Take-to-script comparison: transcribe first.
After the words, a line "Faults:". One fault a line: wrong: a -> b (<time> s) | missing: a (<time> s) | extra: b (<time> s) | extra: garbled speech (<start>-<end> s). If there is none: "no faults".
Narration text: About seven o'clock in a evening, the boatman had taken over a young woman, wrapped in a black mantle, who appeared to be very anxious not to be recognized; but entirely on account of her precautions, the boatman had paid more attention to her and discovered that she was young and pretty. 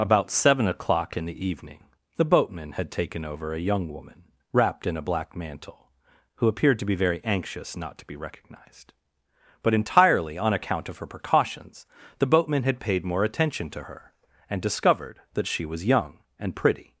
About seven o'clock in the evening, the boatman had taken over a young woman, wrapped in a black mantle, who appeared to be very anxious not to be recognized; but entirely on account of her precautions, the boatman had paid more attention to her and discovered that she was young and pretty.
Faults:
wrong: a -> the (1.2 s)